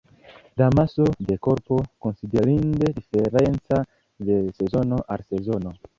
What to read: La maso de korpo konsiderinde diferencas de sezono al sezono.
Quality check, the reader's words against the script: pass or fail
pass